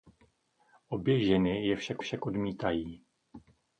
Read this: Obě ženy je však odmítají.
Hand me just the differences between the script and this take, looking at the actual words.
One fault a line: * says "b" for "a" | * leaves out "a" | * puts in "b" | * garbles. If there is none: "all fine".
* puts in "však"